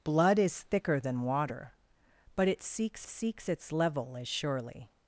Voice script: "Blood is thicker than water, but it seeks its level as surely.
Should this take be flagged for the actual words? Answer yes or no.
yes